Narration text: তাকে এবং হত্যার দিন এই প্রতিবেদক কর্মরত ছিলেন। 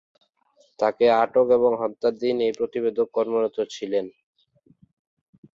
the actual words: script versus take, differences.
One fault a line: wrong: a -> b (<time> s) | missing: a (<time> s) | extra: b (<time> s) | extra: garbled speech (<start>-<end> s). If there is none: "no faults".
extra: আটক (1.2 s)